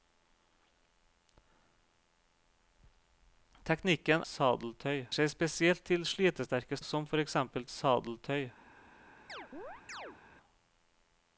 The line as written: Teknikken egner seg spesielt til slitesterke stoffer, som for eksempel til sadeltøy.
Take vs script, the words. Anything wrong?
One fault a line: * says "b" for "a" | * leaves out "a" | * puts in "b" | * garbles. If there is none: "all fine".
* says "sadeltøy" for "egner"
* leaves out "stoffer"
* leaves out "til"